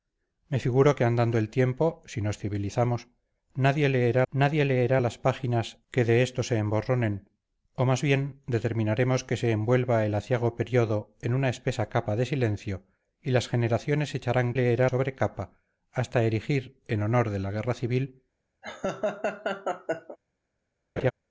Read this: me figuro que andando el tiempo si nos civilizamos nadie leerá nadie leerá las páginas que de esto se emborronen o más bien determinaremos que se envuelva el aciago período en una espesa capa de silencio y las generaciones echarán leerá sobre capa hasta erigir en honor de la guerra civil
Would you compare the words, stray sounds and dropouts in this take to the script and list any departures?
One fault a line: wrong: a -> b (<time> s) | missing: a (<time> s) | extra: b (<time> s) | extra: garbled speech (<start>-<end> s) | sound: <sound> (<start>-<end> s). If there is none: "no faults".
sound: laugh (18.6-20.2 s)
sound: laugh (21.0-21.1 s)